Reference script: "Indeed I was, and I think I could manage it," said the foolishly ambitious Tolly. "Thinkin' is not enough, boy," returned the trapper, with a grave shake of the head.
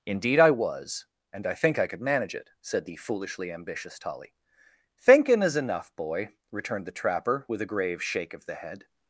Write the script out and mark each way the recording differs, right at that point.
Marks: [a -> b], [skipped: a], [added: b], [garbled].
"Indeed I was, and I think I could manage it," said the foolishly ambitious Tolly. "Thinkin' is [skipped: not] enough, boy," returned the trapper, with a grave shake of the head.